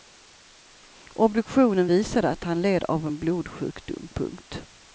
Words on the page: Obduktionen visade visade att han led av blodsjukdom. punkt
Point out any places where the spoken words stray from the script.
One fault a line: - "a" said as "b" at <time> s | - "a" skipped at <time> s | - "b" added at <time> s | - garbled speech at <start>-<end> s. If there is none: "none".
- "visade" skipped at 2.3 s
- "en" added at 3.0 s